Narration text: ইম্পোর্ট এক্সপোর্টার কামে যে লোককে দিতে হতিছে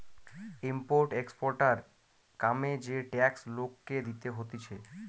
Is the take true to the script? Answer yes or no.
no